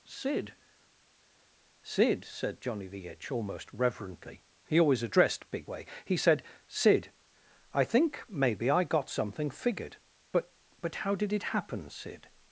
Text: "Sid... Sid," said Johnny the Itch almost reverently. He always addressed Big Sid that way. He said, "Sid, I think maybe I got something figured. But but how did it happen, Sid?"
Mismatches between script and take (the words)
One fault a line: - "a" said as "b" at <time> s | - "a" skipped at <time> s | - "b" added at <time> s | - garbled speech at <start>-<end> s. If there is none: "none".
- "Sid that" skipped at 5.7 s